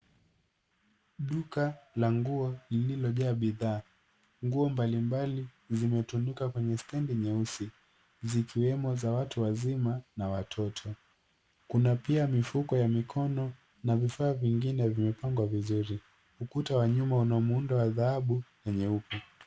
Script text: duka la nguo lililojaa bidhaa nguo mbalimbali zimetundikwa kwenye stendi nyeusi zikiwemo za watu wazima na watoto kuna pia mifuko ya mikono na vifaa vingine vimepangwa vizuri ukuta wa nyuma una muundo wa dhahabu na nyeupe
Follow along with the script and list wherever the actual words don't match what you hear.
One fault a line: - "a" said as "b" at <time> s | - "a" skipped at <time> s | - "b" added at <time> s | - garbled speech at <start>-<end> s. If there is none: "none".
none